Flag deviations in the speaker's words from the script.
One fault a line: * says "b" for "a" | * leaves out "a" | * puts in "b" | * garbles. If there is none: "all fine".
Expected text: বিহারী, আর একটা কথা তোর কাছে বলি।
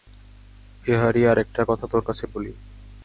all fine